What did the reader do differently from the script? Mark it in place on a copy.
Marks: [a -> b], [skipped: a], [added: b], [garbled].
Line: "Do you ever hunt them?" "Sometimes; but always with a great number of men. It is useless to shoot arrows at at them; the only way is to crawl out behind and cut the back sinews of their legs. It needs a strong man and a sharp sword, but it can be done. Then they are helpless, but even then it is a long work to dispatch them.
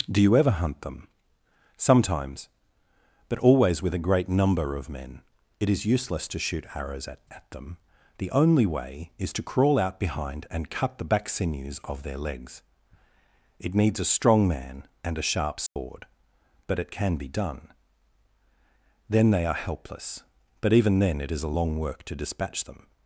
"Do you ever hunt them?" "Sometimes; but always with a great number of men. It is useless to shoot arrows at at them; the only way is to crawl out behind and cut the back sinews of their legs. It needs a strong man and a sharp sword, but it can be done. Then they are helpless, but even then it is a long work to dispatch them.